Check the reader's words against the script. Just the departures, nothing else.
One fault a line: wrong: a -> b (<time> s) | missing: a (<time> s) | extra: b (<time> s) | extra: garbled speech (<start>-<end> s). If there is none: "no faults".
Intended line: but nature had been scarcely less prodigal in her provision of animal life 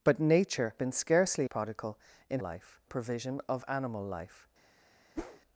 missing: had (0.8 s)
missing: less (1.5 s)
wrong: her -> life (2.4 s)